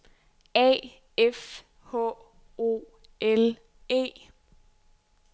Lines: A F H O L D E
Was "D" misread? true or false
true